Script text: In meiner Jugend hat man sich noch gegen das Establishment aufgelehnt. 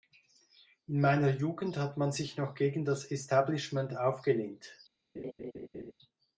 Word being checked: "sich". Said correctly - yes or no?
yes